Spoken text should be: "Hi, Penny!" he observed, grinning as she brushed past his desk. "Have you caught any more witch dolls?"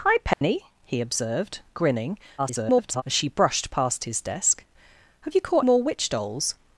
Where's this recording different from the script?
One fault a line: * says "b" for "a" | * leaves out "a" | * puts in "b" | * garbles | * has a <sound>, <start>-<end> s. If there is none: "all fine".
* has a dropout, 0.3-0.4 s
* garbles
* leaves out "any"